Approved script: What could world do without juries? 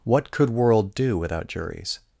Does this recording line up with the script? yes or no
yes